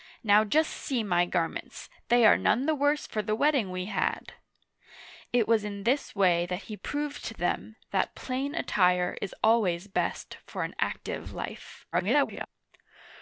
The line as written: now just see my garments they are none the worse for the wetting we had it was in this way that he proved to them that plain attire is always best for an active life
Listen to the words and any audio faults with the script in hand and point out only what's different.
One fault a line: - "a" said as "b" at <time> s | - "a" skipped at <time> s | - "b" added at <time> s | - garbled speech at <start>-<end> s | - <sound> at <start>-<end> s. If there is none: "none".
- garbled speech at 11.9-12.5 s